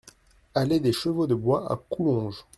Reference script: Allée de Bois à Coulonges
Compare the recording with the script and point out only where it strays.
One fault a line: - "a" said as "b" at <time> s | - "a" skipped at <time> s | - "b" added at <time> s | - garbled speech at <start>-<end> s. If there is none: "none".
- "des Chevaux" added at 0.8 s